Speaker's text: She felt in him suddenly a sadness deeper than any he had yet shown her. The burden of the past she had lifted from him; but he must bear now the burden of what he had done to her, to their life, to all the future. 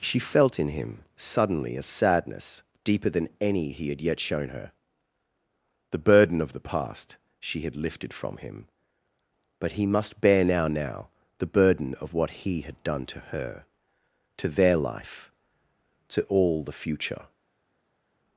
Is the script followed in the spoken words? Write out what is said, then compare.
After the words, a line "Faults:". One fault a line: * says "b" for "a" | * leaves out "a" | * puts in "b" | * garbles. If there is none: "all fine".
She felt in him suddenly a sadness deeper than any he had yet shown her. The burden of the past she had lifted from him; but he must bear now now the burden of what he had done to her, to their life, to all the future.
Faults:
* puts in "now"